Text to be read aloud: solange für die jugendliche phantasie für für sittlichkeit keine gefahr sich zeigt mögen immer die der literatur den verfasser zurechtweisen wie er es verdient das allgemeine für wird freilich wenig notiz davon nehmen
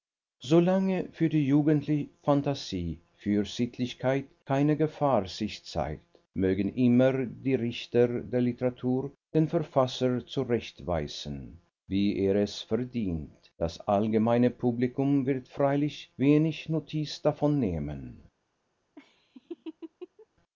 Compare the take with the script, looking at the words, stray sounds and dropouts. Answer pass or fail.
fail